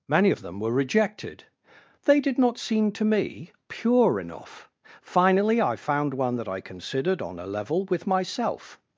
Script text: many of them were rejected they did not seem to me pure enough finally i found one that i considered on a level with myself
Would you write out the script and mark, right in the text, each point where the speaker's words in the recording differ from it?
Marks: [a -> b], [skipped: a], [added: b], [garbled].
many of them were rejected they did not seem to me pure enough finally i found one that i considered on a level with myself